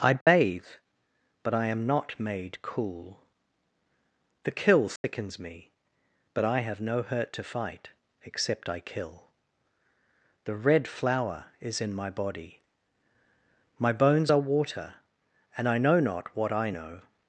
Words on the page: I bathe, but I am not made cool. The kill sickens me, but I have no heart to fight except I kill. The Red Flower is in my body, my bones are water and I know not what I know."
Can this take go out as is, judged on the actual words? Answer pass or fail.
fail